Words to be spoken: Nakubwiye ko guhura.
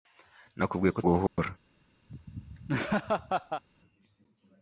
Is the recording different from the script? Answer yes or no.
no